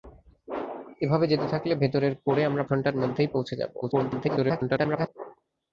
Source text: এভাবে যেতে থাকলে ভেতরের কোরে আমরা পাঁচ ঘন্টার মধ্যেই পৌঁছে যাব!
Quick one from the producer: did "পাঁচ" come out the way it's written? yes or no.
no